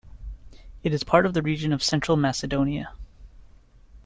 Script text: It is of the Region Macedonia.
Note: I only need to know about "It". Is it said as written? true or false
true